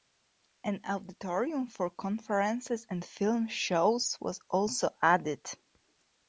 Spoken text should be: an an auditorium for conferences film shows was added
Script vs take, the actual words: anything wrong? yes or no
yes